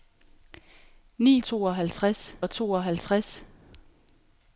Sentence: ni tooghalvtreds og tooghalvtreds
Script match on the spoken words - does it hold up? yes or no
yes